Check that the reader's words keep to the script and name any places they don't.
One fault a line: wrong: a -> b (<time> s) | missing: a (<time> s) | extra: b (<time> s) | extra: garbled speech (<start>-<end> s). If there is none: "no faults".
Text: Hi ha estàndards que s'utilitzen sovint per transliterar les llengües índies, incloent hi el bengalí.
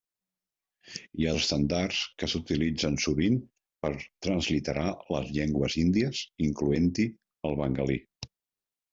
no faults